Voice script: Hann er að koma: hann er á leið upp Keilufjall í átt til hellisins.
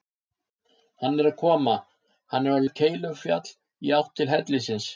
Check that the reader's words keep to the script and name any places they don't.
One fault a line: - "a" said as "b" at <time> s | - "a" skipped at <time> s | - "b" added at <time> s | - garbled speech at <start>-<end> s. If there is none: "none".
- "leið" skipped at 2.7 s